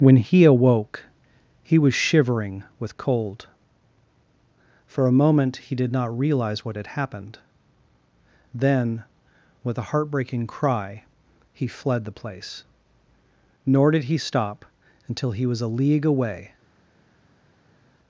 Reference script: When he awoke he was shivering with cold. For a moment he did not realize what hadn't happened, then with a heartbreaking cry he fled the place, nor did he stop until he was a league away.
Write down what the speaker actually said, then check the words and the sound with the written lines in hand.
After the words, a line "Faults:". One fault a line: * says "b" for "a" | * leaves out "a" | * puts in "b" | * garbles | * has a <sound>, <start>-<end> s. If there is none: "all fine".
When he awoke he was shivering with cold. For a moment he did not realize what had happened, then with a heartbreaking cry he fled the place, nor did he stop until he was a league away.
Faults:
* says "had" for "hadn't"